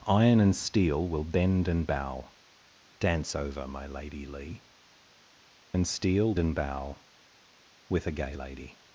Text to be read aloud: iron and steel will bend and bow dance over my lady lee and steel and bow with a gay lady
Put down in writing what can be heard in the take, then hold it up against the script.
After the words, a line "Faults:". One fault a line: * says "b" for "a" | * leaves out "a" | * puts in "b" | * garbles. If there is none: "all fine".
iron and steel will bend and bow dance over my lady lee and steel and bow with a gay lady
Faults:
all fine